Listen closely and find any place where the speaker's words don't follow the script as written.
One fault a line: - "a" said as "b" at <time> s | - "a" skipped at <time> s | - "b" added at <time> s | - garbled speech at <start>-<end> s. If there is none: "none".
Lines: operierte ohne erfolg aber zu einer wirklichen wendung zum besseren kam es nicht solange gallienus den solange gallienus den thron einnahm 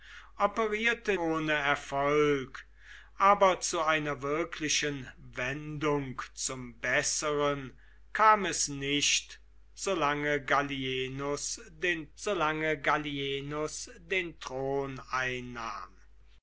none